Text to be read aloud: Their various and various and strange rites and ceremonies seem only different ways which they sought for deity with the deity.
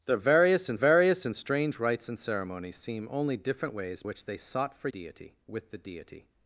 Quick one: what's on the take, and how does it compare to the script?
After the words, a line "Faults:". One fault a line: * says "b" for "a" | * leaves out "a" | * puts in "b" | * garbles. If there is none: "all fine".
Their various and various and strange rites and ceremonies seem only different ways which they sought for deity with the deity.
Faults:
all fine